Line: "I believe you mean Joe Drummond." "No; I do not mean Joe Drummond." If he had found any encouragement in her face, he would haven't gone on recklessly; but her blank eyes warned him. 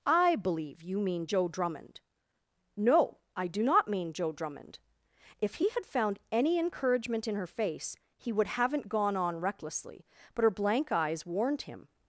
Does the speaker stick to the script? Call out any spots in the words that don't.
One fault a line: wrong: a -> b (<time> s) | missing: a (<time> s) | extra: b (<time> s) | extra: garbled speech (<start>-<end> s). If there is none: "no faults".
no faults